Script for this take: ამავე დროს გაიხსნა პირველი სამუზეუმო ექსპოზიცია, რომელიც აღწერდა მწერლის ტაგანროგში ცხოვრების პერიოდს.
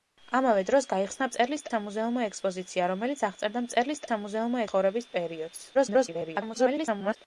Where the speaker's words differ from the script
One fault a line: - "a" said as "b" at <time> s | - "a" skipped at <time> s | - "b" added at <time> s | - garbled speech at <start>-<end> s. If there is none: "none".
- "პირველი" said as "მწერლის" at 1.3 s
- "ტაგანროგში" said as "სამუზეუმო" at 4.1 s
- garbled speech at 5.7-7.2 s